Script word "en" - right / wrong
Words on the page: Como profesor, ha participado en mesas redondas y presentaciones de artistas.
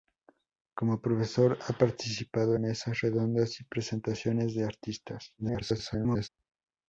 wrong